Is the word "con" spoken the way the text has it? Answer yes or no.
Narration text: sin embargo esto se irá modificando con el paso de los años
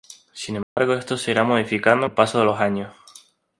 no